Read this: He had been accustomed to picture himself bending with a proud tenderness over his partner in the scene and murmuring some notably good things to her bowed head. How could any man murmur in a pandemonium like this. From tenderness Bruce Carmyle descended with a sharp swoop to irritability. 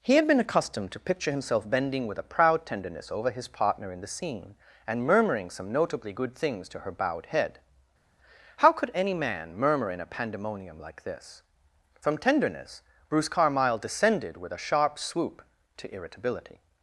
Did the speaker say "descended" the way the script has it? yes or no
yes